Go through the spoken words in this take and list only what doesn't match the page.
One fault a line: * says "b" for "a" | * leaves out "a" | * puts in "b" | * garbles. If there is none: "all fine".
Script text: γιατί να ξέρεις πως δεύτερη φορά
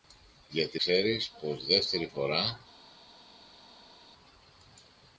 * leaves out "να"